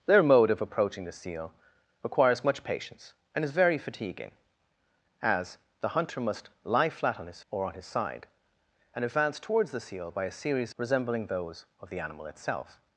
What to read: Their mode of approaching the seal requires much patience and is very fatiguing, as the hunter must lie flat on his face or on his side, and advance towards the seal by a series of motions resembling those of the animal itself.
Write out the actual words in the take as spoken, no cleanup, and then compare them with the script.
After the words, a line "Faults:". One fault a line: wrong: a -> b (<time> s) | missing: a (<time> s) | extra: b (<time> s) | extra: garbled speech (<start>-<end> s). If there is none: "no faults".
Their mode of approaching the seal requires much patience and is very fatiguing, as the hunter must lie flat on his or on his side, and advance towards the seal by a series resembling those of the animal itself.
Faults:
missing: face (7.4 s)
missing: of motions (10.7 s)